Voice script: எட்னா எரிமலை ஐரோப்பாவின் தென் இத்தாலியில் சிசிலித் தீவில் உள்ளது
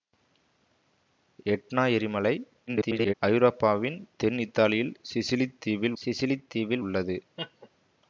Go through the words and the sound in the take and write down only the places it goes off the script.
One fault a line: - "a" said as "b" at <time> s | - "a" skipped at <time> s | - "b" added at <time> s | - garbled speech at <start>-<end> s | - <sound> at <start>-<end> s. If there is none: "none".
- garbled speech at 2.7-3.1 s
- "சிசிலித் தீவில்" added at 6.0 s
- laugh at 7.4-7.7 s